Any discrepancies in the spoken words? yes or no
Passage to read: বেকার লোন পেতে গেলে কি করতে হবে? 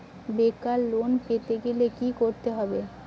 no